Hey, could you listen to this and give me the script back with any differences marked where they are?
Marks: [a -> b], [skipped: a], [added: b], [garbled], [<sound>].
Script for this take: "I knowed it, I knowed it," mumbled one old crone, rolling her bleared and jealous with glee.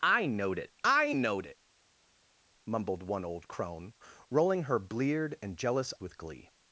"I knowed it, I knowed it," mumbled one old crone, rolling her bleared and jealous with glee.